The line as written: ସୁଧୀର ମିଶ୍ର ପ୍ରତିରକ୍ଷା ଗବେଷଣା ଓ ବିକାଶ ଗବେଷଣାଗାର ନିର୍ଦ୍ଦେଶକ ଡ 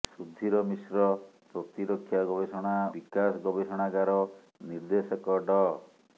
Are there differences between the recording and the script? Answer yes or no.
yes